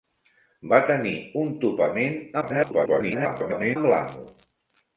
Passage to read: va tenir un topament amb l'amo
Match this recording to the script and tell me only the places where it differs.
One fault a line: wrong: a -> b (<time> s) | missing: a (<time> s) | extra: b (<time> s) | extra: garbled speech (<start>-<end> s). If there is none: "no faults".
extra: garbled speech (2.4-3.8 s)